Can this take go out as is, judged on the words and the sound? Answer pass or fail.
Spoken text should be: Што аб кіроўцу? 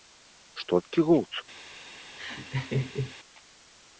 fail